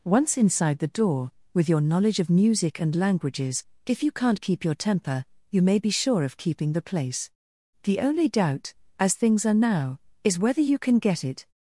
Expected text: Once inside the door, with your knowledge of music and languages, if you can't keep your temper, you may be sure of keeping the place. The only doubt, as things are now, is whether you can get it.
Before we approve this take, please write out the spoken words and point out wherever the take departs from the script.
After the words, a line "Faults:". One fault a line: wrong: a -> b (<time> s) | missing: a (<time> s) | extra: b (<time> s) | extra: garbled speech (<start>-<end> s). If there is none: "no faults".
Once inside the door, with your knowledge of music and languages, if you can't keep your temper, you may be sure of keeping the place. The only doubt, as things are now, is whether you can get it.
Faults:
no faults